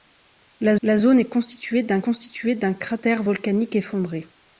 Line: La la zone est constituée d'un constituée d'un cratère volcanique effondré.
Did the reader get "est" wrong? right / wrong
right